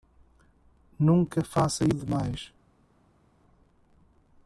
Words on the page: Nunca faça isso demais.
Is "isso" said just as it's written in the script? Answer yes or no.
no